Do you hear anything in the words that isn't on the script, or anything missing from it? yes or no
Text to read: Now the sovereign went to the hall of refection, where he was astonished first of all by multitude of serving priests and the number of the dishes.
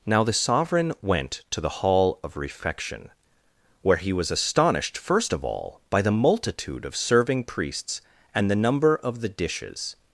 yes